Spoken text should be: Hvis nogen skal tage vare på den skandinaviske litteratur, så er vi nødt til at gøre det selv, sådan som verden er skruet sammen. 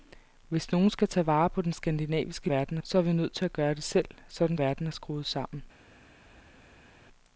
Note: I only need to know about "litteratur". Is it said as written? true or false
false